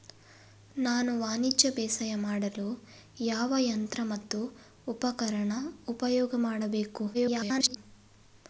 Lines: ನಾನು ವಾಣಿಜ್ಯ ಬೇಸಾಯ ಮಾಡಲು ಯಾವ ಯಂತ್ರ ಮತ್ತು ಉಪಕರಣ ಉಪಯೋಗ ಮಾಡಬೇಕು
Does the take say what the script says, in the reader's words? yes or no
no